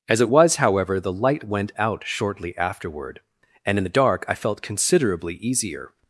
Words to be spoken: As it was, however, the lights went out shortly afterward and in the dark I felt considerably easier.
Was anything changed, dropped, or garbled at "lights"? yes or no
yes